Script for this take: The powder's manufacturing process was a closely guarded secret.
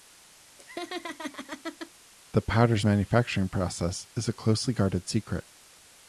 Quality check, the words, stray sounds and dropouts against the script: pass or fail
fail